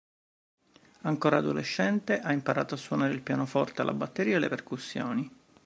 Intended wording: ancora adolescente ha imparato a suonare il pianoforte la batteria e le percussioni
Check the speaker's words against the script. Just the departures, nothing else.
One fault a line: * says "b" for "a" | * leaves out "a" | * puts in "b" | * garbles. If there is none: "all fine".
all fine